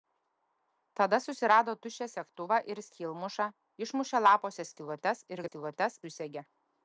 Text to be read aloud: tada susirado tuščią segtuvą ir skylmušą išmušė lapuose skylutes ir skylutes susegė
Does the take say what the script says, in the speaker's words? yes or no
yes